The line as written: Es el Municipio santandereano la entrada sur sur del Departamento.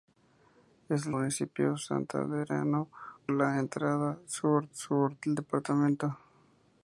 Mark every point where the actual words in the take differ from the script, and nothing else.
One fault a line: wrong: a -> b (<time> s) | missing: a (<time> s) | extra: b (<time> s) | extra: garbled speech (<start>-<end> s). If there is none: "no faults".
no faults